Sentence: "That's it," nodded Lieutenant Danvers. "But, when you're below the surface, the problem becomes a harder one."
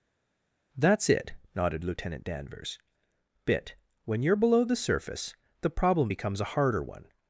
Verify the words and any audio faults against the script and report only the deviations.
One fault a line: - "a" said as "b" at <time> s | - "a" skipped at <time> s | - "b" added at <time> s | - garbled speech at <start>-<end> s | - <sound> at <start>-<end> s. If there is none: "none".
- "But" said as "Bit" at 3.4 s